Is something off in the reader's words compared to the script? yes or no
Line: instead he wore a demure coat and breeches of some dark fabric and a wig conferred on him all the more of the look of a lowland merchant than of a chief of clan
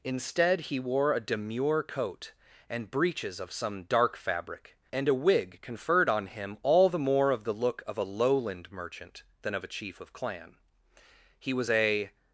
yes